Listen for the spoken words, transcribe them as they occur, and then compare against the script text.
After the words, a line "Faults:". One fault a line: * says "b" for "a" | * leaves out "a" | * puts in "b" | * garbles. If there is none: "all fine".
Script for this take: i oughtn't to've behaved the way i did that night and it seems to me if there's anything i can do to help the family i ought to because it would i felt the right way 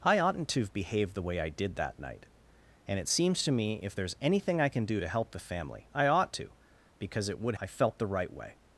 i oughtn't to've behaved the way i did that night and it seems to me if there's anything i can do to help the family i ought to because it would i felt the right way
Faults:
all fine